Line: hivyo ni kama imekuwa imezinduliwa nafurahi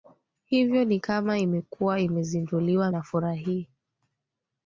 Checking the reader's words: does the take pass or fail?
pass